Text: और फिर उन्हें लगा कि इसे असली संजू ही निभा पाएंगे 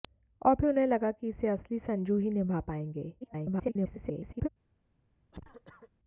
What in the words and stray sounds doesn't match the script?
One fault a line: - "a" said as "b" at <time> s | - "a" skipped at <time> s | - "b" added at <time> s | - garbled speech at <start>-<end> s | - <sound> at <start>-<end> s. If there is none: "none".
- garbled speech at 3.2-4.5 s
- cough at 5.3-5.9 s